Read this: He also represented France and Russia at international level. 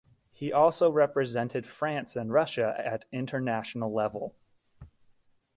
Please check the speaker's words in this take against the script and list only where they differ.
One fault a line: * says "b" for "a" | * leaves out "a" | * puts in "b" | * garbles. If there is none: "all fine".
all fine